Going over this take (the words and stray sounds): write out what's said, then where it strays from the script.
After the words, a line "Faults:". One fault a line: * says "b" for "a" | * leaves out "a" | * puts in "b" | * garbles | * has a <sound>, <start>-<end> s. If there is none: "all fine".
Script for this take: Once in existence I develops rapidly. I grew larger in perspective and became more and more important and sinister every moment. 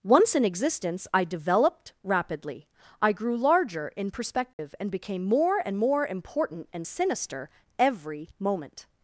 Once in existence I developed rapidly. I grew larger in perspective and became more and more important and sinister every moment.
Faults:
* says "developed" for "develops"
* has a dropout, 4.5-4.6 s